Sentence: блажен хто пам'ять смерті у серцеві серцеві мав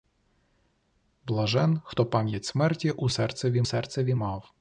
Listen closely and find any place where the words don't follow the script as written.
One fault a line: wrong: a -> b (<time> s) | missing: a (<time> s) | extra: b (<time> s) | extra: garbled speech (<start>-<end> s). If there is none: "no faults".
no faults